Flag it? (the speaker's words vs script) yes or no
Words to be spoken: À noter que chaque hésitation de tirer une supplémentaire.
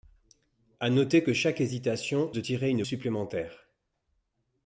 no